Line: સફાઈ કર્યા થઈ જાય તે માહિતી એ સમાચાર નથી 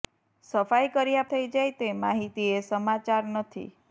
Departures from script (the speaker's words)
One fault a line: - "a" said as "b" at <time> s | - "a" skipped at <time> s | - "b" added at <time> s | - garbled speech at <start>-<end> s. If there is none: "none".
none